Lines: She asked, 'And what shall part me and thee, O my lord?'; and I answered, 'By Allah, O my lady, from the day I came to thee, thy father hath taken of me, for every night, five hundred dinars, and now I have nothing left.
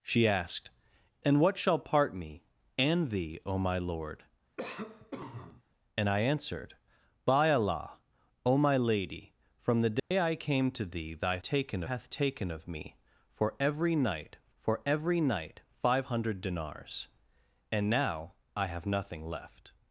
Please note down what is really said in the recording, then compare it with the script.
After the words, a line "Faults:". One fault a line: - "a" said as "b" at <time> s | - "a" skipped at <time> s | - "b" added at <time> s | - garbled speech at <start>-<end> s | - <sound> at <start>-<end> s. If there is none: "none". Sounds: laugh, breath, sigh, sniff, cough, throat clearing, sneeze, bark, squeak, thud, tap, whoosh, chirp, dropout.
She asked, 'And what shall part me and thee, O my lord?'; and I answered, 'By Allah, O my lady, from the day I came to thee, thy taken hath taken of me, for every night for every night, five hundred dinars, and now I have nothing left.
Faults:
- cough at 4.6-5.6 s
- dropout at 10.0-10.1 s
- "father" said as "taken" at 11.4 s
- "for every night" added at 14.6 s